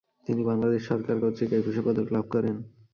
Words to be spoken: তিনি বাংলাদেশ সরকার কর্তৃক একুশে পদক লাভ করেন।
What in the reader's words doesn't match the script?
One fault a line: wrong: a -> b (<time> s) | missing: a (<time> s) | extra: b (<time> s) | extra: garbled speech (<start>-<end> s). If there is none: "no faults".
no faults